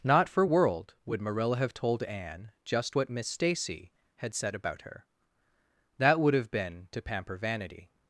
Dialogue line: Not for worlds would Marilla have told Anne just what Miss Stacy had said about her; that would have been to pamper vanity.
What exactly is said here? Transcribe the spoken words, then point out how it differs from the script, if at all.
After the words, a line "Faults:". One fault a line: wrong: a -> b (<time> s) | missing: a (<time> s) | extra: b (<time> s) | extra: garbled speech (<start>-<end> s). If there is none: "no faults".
Not for world would Marilla have told Anne just what Miss Stacy had said about her; that would have been to pamper vanity.
Faults:
wrong: worlds -> world (0.4 s)